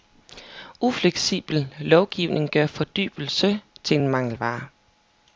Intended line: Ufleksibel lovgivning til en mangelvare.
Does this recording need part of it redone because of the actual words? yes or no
yes